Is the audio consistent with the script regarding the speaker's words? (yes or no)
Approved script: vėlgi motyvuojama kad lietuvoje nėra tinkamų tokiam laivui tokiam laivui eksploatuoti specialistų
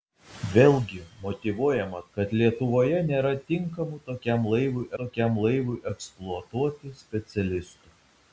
yes